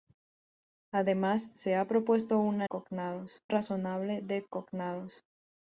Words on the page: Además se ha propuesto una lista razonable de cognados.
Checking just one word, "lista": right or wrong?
wrong